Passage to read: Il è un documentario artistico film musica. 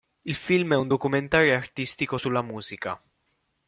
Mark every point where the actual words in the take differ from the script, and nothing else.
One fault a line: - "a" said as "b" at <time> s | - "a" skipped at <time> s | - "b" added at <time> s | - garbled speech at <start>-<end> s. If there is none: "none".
- "film" added at 0.3 s
- "film" said as "sulla" at 2.2 s